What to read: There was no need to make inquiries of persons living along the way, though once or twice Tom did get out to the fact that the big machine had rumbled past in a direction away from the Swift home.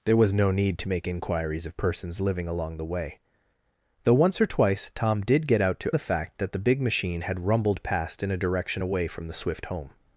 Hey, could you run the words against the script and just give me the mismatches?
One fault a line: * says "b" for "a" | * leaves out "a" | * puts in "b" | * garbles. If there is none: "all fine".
all fine